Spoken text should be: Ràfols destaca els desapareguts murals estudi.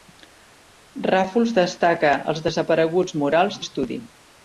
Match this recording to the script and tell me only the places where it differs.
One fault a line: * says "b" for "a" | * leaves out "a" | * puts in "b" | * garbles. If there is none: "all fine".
all fine